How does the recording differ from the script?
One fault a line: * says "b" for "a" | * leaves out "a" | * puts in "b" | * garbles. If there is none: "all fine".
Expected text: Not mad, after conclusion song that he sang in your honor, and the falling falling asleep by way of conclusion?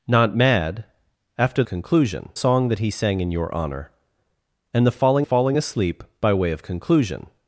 all fine